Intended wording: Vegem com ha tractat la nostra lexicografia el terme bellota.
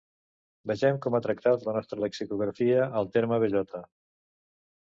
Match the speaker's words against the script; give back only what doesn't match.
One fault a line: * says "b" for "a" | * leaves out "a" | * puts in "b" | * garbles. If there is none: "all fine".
all fine